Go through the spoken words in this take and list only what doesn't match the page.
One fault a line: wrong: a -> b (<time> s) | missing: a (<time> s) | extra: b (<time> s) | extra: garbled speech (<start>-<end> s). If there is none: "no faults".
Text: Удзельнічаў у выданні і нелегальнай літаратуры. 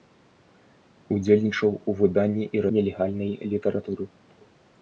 no faults